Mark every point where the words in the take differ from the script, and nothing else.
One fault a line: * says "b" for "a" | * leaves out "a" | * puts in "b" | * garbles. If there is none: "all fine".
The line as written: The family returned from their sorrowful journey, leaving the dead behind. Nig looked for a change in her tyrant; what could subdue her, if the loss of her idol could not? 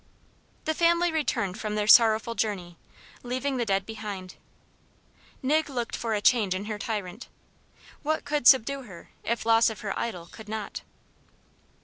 * leaves out "the"